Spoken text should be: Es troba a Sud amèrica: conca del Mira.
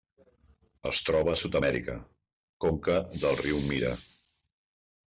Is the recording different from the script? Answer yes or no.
yes